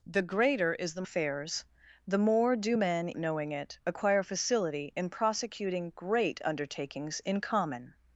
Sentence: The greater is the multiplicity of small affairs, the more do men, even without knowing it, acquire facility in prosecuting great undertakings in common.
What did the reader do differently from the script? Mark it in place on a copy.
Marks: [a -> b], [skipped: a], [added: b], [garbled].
The greater is the [skipped: multiplicity of small] affairs, the more do men, [skipped: even without] knowing it, acquire facility in prosecuting great undertakings in common.